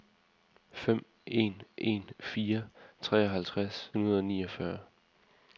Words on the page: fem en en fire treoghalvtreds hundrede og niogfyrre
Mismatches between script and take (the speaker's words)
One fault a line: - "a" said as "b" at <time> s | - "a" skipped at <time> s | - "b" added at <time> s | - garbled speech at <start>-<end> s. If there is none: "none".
none